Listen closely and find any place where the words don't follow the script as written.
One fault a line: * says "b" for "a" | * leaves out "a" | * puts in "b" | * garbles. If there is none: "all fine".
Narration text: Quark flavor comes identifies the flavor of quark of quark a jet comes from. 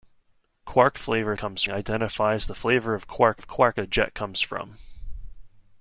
all fine